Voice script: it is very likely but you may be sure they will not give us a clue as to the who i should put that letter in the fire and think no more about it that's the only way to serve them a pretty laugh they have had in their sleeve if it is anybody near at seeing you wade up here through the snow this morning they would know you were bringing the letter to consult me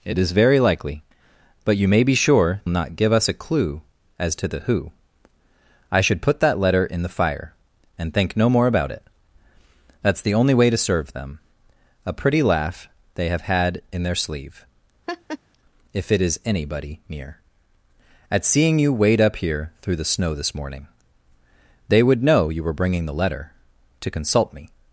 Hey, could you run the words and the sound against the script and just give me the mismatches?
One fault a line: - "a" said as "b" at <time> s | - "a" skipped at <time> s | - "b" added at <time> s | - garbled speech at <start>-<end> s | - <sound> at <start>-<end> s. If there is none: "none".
- "they will" skipped at 2.6 s
- laugh at 15.1-15.4 s